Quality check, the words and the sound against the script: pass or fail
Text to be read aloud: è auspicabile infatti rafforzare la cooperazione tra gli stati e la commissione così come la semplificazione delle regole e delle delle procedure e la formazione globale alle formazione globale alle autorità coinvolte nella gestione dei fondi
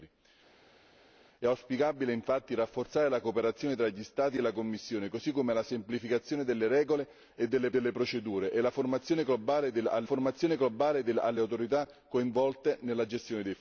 pass